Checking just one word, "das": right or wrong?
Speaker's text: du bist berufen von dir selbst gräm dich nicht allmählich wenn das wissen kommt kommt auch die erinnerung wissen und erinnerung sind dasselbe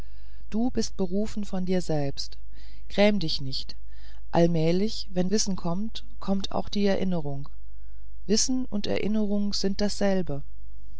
wrong